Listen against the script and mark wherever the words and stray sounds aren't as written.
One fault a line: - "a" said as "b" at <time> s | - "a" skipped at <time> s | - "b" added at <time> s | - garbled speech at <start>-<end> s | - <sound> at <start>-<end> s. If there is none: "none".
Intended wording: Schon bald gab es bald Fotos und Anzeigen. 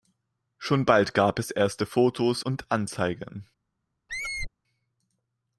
- "bald" said as "erste" at 1.5 s
- squeak at 4.1-4.5 s